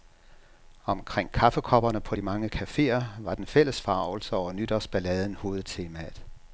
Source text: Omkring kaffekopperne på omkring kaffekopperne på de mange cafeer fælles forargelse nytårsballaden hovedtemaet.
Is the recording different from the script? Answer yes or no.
yes